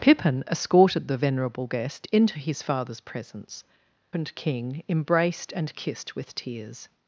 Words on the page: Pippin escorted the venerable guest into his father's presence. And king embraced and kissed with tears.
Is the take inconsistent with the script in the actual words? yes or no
no